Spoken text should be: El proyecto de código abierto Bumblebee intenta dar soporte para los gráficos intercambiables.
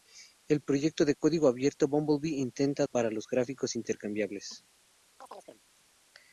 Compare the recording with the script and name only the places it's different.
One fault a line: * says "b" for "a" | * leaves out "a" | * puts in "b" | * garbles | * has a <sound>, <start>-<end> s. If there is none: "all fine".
* leaves out "dar soporte"
* has a chirp, 5.2-5.6 s